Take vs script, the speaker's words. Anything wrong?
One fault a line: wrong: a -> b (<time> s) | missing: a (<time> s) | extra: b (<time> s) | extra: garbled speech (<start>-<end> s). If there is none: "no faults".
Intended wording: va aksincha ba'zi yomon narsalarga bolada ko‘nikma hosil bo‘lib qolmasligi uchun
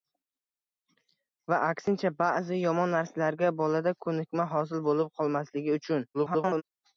extra: garbled speech (6.1-6.6 s)